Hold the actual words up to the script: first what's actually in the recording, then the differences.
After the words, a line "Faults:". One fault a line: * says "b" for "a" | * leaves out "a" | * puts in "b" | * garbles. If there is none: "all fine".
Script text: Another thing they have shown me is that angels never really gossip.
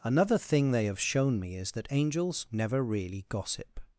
Another thing they have shown me is that angels never really gossip.
Faults:
all fine